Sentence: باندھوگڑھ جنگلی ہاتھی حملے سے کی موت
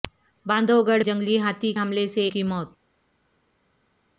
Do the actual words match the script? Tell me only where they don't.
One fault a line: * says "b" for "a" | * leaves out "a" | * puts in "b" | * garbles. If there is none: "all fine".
all fine